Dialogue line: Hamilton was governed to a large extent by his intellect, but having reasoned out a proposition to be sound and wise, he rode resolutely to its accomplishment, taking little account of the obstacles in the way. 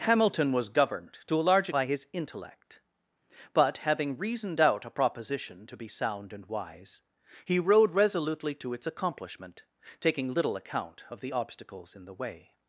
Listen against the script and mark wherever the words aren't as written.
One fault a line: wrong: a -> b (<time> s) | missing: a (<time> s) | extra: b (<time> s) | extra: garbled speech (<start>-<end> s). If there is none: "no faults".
missing: extent (1.7 s)